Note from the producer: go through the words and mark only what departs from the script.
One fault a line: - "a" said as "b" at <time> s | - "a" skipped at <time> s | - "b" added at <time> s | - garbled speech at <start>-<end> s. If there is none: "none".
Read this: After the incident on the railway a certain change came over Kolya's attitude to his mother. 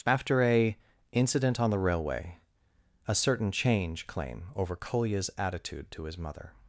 - "the" said as "a" at 0.4 s
- "came" said as "claim" at 4.1 s